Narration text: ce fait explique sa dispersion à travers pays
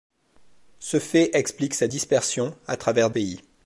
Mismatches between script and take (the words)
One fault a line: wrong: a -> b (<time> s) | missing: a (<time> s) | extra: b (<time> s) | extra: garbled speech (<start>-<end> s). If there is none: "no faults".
no faults